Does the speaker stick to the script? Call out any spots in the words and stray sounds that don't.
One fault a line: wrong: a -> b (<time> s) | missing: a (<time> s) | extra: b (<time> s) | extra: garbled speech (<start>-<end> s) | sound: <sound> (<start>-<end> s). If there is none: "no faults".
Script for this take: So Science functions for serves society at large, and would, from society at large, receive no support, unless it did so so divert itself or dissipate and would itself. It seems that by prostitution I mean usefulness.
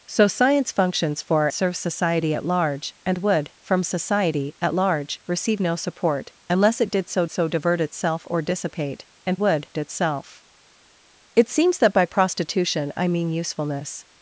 no faults